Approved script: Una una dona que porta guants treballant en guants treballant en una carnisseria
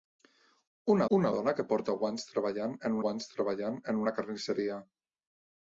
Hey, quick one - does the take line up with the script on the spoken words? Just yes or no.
yes